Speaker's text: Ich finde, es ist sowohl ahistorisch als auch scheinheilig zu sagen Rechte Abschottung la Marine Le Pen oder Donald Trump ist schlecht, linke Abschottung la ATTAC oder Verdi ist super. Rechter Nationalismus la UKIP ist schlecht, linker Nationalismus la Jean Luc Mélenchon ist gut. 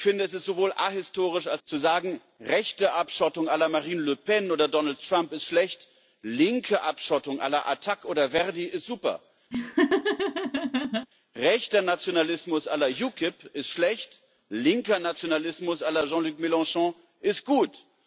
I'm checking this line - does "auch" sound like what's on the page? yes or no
no